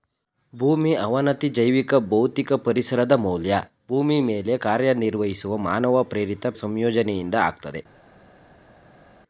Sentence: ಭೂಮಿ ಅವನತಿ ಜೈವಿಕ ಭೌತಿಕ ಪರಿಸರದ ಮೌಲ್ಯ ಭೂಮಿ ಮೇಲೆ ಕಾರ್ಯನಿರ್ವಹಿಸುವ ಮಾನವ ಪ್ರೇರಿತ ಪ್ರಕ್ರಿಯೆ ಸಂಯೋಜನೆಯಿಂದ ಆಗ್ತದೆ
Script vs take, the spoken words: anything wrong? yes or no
yes